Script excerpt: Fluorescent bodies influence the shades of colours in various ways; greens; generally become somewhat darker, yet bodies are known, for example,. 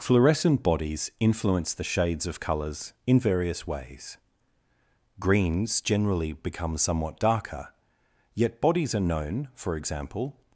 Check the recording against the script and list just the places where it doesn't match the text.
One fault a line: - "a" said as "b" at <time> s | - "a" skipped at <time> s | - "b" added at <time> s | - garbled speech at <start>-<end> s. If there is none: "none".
none